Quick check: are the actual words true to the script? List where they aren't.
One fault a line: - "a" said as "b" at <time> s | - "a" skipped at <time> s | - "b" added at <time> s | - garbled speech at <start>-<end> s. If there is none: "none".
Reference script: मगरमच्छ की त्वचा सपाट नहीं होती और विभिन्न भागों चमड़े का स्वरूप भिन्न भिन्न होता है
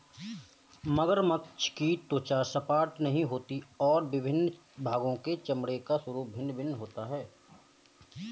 - "के" added at 5.2 s